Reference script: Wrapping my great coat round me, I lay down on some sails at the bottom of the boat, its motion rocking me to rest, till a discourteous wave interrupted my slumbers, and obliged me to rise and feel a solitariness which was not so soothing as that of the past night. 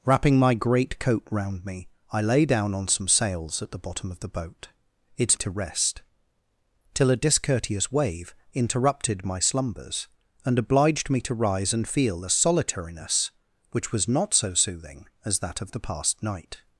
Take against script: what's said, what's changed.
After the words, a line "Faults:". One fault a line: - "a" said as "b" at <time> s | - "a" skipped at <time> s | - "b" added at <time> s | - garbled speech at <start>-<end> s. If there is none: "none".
Wrapping my great coat round me, I lay down on some sails at the bottom of the boat, its to rest, till a discourteous wave interrupted my slumbers, and obliged me to rise and feel a solitariness which was not so soothing as that of the past night.
Faults:
- "motion rocking me" skipped at 5.4 s